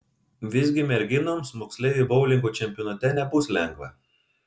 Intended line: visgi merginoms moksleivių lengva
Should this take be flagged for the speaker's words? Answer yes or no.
yes